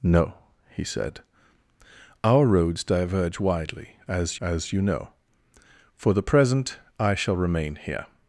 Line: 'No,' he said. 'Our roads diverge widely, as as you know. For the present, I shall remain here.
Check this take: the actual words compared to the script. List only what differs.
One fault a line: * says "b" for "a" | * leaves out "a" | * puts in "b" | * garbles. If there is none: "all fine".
all fine